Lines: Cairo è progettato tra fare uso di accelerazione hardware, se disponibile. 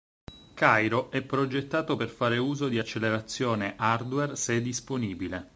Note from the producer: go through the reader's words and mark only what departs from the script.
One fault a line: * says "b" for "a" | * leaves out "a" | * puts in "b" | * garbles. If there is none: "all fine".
* says "per" for "tra"